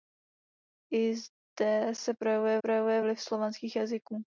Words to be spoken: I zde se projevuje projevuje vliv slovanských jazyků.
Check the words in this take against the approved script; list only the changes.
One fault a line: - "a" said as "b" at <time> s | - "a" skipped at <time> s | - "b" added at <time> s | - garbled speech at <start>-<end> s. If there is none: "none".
none